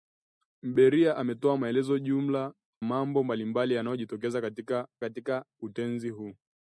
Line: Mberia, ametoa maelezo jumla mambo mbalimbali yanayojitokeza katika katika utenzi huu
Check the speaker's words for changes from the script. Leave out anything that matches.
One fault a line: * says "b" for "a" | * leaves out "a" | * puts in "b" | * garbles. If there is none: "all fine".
all fine